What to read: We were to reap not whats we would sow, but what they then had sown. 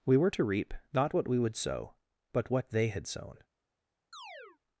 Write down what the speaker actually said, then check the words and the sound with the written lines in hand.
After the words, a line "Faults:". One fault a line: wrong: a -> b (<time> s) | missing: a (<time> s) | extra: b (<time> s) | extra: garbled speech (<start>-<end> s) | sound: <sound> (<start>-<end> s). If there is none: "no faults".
We were to reap not what we would sow, but what they had sown.
Faults:
wrong: whats -> what (1.1 s)
missing: then (2.9 s)
sound: chirp (4.1-4.6 s)